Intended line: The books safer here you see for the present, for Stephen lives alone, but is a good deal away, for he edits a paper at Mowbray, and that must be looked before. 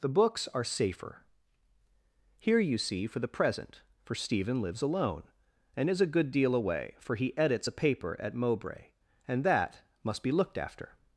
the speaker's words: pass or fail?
fail